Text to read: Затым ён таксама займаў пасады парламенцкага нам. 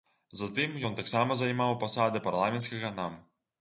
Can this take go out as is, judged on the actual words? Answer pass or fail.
pass